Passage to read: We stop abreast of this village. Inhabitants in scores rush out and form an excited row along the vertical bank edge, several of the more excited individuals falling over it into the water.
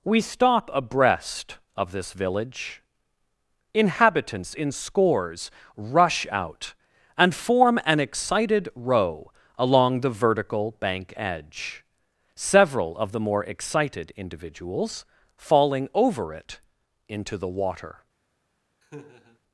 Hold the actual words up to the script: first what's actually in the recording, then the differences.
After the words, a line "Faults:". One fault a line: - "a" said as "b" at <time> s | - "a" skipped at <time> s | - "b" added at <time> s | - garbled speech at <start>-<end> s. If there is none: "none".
We stop abreast of this village. Inhabitants in scores rush out and form an excited row along the vertical bank edge, several of the more excited individuals falling over it into the water.
Faults:
none